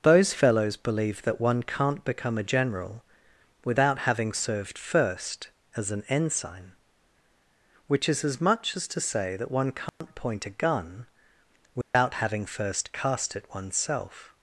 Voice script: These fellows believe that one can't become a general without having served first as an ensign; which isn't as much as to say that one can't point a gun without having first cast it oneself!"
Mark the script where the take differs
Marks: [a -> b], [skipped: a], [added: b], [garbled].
[These -> Those] fellows believe that one can't become a general without having served first as an ensign; which [isn't -> is] as much as to say that one can't point a gun without having first cast it oneself!"